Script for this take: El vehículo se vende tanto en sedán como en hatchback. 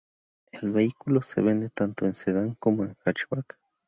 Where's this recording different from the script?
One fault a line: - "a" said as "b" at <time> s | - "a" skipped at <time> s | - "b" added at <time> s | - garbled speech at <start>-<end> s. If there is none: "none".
none